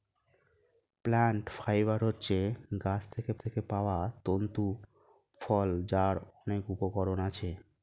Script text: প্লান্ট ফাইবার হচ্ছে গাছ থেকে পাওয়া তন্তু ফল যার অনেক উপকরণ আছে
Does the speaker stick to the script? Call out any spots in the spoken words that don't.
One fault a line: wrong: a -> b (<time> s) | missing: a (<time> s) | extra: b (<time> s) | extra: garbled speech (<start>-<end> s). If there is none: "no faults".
extra: থেকে (3.4 s)